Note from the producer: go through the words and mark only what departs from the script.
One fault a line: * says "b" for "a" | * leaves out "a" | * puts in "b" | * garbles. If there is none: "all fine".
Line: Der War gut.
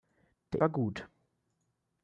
all fine